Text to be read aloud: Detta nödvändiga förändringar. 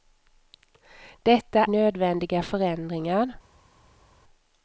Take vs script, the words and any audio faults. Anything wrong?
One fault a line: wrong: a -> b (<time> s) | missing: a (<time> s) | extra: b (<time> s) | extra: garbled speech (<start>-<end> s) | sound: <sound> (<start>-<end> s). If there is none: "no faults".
no faults